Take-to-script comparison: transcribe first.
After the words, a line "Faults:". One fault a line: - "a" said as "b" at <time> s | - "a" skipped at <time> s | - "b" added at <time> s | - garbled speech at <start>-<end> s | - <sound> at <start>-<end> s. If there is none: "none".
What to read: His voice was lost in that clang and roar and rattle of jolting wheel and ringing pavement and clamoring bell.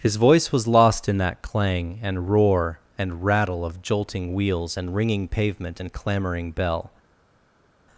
His voice was lost in that clang and roar and rattle of jolting wheels and ringing pavement and clamoring bell.
Faults:
- "wheel" said as "wheels" at 4.3 s